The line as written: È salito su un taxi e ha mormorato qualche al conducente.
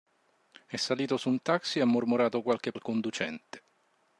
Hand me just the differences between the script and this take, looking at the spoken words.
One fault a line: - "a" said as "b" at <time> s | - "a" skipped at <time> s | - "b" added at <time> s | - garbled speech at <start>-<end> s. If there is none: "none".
none